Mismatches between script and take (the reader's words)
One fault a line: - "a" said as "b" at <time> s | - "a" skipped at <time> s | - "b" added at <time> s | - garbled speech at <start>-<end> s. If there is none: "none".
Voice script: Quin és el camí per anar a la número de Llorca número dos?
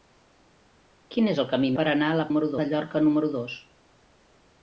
none